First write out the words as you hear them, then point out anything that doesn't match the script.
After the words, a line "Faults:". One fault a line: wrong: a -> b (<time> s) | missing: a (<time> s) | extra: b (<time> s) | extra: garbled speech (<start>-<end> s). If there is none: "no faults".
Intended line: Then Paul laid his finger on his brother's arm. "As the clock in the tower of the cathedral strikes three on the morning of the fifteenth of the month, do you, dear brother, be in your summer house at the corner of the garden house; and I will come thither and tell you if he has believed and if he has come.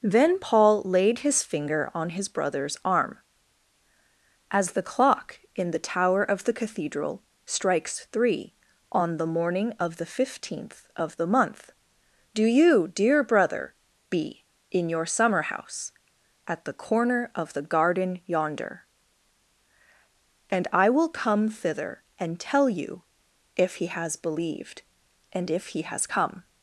Then Paul laid his finger on his brother's arm. "As the clock in the tower of the cathedral strikes three on the morning of the fifteenth of the month, do you, dear brother, be in your summer house at the corner of the garden yonder; and I will come thither and tell you if he has believed and if he has come.
Faults:
wrong: house -> yonder (18.2 s)